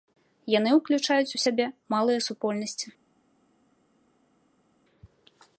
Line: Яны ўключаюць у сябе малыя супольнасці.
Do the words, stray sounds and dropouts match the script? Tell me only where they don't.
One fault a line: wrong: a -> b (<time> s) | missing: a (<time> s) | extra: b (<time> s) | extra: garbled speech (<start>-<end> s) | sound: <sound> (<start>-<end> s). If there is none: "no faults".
no faults